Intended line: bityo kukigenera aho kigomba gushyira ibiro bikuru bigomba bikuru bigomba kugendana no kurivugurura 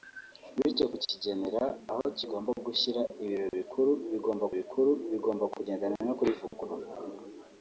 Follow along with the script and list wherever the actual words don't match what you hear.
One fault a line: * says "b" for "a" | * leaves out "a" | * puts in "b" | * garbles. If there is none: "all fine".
all fine